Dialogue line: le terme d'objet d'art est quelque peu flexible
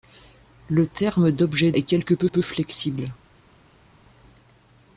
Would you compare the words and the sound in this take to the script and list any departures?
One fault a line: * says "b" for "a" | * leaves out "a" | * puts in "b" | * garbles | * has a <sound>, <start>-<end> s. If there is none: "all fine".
* leaves out "d'art"
* puts in "peu"